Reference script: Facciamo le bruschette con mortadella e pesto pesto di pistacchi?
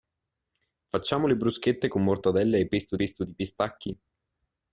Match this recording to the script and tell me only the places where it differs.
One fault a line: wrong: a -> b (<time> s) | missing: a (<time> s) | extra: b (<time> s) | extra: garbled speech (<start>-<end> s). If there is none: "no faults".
no faults